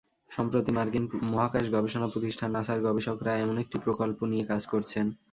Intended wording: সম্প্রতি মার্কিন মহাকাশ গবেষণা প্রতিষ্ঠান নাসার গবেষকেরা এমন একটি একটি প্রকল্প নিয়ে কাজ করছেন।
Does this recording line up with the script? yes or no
no